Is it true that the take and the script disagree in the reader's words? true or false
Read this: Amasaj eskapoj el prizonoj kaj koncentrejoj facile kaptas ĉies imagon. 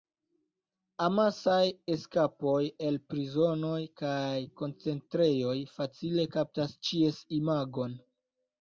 false